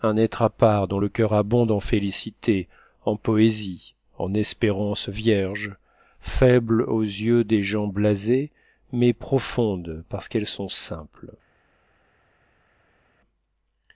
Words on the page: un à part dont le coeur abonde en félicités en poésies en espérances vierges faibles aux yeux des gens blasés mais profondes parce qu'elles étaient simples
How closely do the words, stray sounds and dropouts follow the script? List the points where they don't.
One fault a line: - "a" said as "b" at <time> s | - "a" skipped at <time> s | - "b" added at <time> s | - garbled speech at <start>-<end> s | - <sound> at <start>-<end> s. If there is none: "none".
- "être" added at 0.2 s
- "étaient" said as "sont" at 10.5 s